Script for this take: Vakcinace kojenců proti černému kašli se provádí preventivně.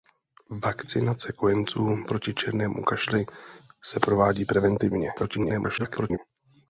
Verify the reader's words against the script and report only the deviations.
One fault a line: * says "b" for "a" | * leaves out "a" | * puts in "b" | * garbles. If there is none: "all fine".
* garbles